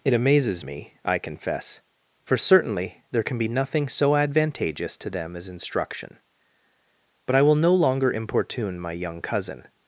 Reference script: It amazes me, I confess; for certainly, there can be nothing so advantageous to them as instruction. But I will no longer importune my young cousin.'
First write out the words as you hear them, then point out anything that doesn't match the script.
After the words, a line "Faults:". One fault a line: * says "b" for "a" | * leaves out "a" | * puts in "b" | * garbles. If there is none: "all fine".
It amazes me, I confess; for certainly, there can be nothing so advantageous to them as instruction. But I will no longer importune my young cousin.'
Faults:
all fine